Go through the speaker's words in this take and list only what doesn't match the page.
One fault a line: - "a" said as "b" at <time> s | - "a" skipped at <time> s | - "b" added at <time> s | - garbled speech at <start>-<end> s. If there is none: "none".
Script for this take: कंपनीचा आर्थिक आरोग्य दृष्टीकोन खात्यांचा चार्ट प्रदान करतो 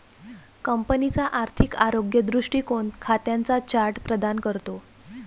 none